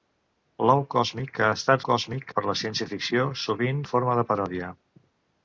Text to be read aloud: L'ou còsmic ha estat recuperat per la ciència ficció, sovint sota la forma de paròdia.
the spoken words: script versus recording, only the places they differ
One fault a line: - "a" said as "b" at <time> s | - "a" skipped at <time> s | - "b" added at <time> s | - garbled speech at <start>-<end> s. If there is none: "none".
- "recuperat" said as "còsmic" at 1.9 s
- "sota" skipped at 3.8 s